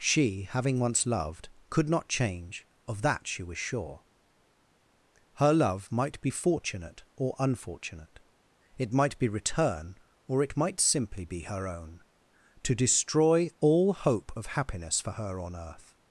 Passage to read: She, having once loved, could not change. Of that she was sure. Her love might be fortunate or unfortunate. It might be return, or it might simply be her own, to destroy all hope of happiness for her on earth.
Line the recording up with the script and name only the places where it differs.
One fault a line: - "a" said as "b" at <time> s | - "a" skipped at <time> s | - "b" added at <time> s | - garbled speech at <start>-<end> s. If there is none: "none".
none